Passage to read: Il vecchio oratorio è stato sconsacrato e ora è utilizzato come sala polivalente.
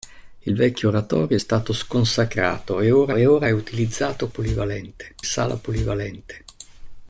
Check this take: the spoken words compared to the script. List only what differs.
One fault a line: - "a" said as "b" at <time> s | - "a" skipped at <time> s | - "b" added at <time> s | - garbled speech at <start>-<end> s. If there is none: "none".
- "e ora" added at 3.1 s
- "come" said as "polivalente" at 4.3 s